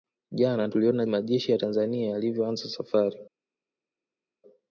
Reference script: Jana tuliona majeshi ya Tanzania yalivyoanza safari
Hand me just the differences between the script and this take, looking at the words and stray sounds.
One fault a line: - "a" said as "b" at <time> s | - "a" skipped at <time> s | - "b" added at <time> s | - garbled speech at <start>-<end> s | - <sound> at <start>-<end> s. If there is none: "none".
none